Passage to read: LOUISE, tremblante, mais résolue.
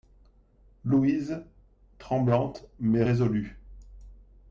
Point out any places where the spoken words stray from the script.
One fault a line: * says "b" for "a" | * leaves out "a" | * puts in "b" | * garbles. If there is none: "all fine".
all fine